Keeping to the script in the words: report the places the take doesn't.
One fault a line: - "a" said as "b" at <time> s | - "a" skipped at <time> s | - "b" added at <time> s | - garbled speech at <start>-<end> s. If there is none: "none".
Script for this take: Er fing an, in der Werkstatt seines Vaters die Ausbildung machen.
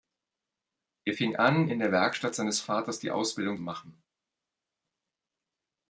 none